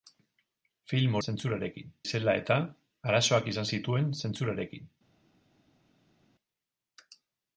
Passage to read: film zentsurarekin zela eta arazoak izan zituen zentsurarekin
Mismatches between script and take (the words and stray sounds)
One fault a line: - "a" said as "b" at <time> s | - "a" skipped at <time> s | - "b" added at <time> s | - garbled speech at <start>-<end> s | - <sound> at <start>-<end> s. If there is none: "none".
none